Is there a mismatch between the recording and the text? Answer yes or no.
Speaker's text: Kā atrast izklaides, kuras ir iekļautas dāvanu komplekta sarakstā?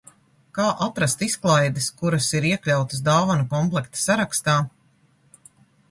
no